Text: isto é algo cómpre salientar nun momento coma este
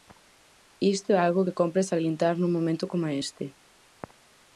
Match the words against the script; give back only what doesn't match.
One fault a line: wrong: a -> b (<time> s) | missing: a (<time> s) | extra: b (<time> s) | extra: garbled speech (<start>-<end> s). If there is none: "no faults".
extra: que (1.4 s)